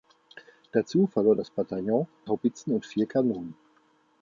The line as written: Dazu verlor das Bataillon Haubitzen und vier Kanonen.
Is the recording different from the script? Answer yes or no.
no